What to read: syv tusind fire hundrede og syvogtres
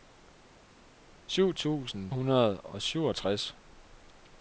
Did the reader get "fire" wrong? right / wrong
wrong